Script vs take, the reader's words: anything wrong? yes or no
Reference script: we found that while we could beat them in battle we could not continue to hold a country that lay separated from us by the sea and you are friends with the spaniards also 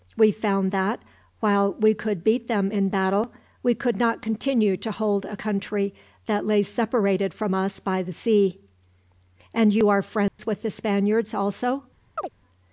no